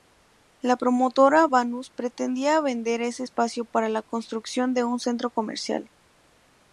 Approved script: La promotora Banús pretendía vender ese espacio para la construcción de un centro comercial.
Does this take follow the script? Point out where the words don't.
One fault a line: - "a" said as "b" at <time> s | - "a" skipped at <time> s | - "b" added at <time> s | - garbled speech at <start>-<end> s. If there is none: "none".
none